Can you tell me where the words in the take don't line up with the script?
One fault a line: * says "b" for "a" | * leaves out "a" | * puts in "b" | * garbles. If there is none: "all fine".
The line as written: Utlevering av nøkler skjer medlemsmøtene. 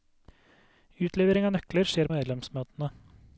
all fine